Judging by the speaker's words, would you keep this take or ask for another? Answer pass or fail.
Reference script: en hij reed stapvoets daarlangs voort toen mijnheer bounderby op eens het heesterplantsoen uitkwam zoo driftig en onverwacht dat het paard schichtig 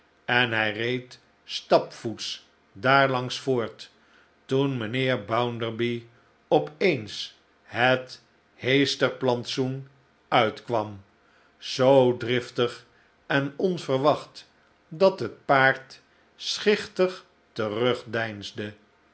pass